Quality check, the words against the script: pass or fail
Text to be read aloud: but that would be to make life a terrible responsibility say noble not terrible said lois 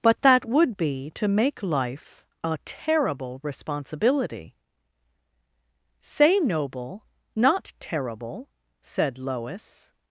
pass